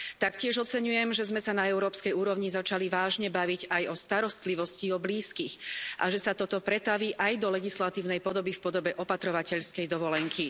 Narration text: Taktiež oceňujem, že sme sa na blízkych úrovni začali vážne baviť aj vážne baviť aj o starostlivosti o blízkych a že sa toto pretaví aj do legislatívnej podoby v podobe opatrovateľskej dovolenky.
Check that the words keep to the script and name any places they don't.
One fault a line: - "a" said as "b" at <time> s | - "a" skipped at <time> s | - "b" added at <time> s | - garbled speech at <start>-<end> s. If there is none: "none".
- "blízkych" said as "európskej" at 1.7 s
- "vážne baviť aj" skipped at 3.8 s